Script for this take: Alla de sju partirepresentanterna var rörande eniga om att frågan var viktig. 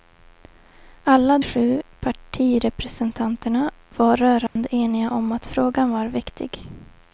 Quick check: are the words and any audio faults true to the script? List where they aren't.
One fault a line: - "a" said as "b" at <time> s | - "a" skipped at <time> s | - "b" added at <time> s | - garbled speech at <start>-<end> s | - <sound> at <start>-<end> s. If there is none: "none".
- "de" skipped at 1.4 s
- dropout at 4.5-4.6 s